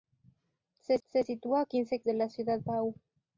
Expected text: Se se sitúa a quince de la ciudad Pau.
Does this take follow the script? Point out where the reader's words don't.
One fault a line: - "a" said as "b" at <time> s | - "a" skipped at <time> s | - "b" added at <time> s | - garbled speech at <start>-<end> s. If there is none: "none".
none